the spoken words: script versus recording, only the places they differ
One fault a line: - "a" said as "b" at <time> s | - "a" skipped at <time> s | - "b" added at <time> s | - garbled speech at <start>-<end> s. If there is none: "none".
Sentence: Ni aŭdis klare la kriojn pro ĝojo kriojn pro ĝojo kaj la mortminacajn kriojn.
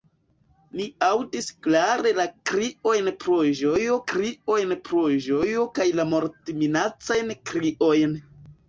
none